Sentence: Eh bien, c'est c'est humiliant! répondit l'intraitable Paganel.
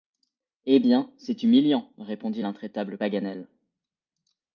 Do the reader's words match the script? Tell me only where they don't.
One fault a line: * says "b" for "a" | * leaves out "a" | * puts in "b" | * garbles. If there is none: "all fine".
* leaves out "c'est"